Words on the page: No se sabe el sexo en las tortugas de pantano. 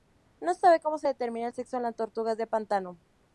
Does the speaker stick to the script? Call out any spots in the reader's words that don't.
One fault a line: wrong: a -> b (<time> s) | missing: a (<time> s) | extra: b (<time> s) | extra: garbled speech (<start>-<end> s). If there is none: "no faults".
extra: cómo se determina (0.8 s)